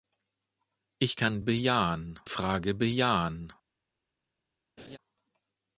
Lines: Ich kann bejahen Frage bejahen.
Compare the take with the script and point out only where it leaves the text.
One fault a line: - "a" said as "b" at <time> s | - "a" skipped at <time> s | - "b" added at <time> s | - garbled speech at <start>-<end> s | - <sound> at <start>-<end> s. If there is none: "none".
- laugh at 4.8-5.0 s